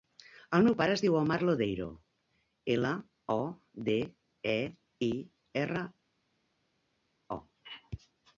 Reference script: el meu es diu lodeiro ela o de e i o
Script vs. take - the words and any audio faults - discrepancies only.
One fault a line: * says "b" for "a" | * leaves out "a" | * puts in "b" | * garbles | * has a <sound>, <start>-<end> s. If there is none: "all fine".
* puts in "pare"
* puts in "omar"
* puts in "erra"